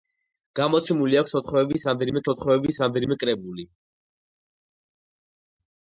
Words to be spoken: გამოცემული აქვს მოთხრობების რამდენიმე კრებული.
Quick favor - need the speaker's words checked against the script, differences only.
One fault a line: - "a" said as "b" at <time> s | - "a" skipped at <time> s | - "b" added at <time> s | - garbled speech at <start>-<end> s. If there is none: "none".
- "მოთხრობების რამდენიმე" added at 2.3 s